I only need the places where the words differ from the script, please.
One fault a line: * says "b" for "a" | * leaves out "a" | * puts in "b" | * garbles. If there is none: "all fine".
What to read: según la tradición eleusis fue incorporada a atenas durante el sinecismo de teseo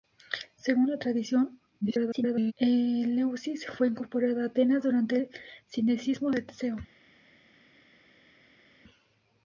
* garbles